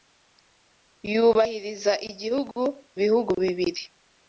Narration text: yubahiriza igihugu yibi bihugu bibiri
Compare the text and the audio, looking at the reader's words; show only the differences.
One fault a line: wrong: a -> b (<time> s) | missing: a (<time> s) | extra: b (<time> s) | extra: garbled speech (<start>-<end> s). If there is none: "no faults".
missing: yibi (2.6 s)